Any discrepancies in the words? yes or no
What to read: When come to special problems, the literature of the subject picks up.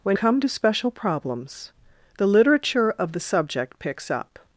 no